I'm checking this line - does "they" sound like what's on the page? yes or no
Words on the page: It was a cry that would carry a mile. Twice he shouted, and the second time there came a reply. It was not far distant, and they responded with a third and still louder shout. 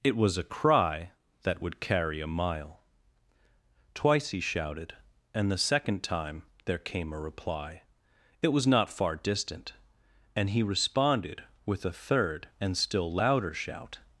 no